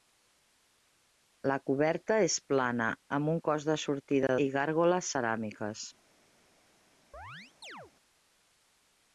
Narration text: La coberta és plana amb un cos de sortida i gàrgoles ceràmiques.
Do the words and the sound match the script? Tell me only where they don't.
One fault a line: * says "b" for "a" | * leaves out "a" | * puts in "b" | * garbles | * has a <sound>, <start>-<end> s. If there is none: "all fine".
* has a chirp, 7.1-7.9 s